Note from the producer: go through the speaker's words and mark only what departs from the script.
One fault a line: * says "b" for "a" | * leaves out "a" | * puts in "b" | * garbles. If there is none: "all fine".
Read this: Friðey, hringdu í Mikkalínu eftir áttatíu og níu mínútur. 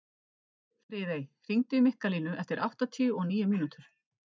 all fine